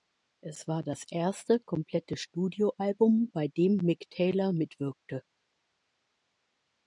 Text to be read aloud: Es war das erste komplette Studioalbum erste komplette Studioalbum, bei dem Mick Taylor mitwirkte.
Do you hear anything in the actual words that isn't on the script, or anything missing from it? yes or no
yes